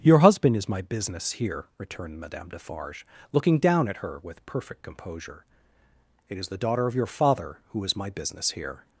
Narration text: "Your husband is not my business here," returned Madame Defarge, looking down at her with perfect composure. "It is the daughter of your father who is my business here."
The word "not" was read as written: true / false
false